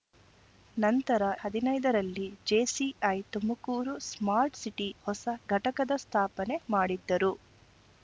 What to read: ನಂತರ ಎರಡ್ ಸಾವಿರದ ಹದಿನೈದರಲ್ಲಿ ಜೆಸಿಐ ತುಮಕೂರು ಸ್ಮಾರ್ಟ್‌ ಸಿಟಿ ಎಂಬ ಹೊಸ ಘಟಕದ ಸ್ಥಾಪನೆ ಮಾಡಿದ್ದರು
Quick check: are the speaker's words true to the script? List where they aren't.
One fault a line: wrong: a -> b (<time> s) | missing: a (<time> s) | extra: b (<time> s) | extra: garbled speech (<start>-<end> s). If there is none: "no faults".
missing: ಎರಡ್ ಸಾವಿರದ (1.2 s)
missing: ಎಂಬ (4.9 s)